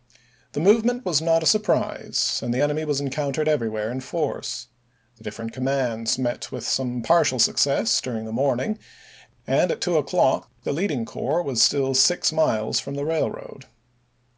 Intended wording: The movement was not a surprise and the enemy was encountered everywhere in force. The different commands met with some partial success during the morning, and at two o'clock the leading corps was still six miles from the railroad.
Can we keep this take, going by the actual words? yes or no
yes